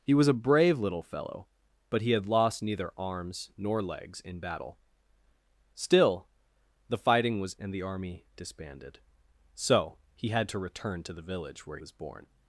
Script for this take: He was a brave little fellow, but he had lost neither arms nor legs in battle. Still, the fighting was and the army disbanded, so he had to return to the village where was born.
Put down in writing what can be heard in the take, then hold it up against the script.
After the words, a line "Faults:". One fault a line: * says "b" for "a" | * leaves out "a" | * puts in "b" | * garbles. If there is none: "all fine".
He was a brave little fellow, but he had lost neither arms nor legs in battle. Still, the fighting was and the army disbanded, so he had to return to the village where was born.
Faults:
all fine